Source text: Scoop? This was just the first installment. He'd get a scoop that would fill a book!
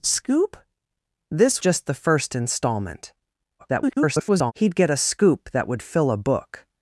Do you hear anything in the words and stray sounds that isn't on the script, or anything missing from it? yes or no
yes